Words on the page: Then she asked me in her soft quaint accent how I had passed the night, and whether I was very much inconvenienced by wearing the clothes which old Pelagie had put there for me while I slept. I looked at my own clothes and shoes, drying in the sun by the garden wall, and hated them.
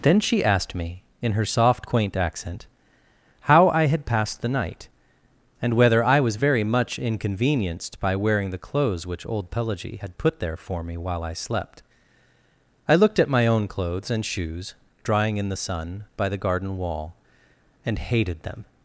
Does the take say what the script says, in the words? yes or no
yes